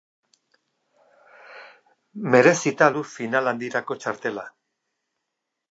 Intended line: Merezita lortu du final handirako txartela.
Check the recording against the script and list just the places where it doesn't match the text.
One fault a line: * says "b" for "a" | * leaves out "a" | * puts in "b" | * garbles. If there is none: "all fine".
* leaves out "lortu"